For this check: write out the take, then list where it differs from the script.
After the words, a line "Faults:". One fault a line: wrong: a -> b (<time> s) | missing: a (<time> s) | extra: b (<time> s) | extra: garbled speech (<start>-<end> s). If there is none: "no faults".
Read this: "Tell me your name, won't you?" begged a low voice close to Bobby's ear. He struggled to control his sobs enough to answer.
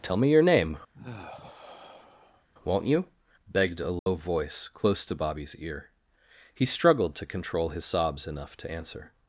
"Tell me your name, won't you?" begged a low voice close to Bobby's ear. He struggled to control his sobs enough to answer.
Faults:
no faults